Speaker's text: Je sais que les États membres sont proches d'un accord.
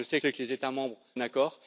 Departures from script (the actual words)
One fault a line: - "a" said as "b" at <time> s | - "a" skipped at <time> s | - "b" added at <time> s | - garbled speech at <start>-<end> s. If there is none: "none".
- "sais" added at 0.2 s
- "sont proches d'un" skipped at 1.0 s